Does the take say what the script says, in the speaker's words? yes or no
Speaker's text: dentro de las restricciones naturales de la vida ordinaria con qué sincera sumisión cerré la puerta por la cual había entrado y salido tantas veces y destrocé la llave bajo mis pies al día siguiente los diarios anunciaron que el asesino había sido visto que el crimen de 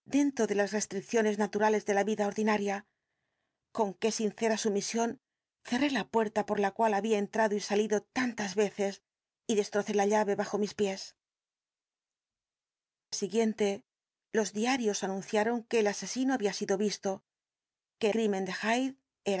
no